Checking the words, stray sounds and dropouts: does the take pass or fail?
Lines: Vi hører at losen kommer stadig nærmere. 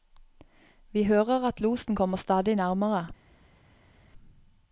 pass